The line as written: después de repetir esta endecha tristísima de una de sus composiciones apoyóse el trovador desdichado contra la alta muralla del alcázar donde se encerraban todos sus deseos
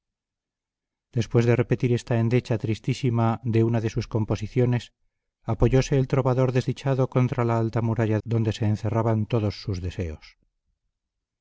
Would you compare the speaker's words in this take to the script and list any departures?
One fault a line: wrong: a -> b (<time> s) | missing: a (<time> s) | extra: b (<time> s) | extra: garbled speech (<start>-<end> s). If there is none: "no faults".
missing: del alcázar (8.2 s)